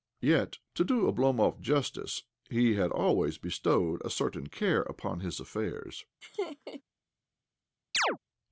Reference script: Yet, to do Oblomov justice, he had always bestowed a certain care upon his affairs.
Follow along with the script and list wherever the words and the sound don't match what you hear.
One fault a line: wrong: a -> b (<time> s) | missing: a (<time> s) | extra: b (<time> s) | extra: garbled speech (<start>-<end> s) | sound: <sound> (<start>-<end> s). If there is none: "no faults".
sound: laugh (6.2-6.8 s)
sound: chirp (7.9-8.2 s)